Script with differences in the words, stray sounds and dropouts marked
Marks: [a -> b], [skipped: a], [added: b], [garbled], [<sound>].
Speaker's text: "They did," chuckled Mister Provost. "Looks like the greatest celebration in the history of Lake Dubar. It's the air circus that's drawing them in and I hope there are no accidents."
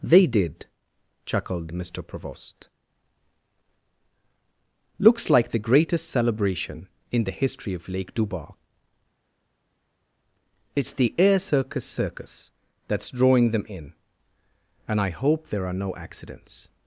"They did," chuckled Mister Provost. "Looks like the greatest celebration in the history of Lake Dubar. It's the air circus [added: circus] that's drawing them in and I hope there are no accidents."